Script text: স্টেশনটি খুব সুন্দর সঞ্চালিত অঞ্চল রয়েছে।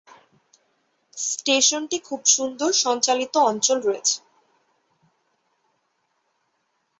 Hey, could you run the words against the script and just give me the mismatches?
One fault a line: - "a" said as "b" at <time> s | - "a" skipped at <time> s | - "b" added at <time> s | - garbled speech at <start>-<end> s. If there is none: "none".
none